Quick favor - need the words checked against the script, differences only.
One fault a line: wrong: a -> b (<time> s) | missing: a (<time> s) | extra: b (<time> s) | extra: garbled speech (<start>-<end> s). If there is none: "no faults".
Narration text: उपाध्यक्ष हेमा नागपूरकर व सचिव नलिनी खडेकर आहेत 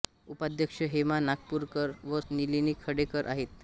missing: सचिव (2.2 s)